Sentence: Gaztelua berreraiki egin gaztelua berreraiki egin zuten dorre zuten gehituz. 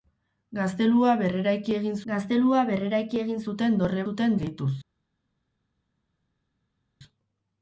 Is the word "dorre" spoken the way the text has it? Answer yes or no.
yes